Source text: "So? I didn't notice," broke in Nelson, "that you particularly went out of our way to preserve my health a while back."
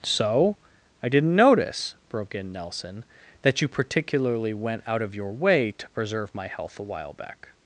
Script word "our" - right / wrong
wrong